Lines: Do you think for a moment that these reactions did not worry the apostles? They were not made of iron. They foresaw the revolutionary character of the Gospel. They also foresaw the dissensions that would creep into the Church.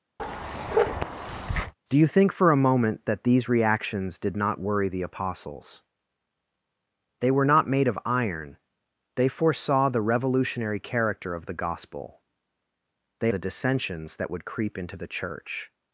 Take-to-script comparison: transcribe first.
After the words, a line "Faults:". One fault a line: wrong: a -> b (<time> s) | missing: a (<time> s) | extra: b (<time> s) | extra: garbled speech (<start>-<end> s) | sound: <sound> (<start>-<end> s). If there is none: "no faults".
Do you think for a moment that these reactions did not worry the apostles? They were not made of iron. They foresaw the revolutionary character of the Gospel. They the dissensions that would creep into the Church.
Faults:
sound: bark (0.2-1.7 s)
missing: also foresaw (13.3 s)